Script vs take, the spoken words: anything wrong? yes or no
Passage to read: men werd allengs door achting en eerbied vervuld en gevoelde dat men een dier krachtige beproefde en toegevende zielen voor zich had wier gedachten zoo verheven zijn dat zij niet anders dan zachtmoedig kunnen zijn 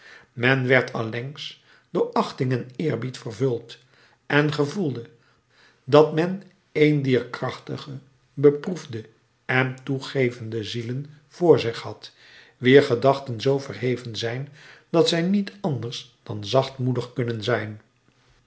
no